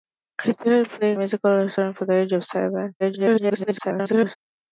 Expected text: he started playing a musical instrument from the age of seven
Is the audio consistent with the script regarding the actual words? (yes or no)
no